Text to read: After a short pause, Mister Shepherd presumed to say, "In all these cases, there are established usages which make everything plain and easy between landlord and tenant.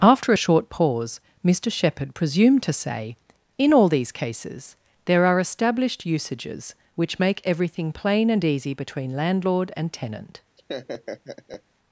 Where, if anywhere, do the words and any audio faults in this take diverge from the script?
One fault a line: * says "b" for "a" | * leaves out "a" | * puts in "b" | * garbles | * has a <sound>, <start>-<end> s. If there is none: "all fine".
* has a laugh, 10.6-11.6 s